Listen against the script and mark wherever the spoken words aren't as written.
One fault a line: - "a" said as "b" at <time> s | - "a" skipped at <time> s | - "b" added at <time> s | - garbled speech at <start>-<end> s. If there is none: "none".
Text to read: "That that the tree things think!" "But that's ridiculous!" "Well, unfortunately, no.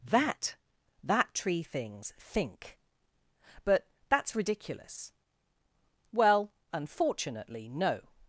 - "the" skipped at 1.3 s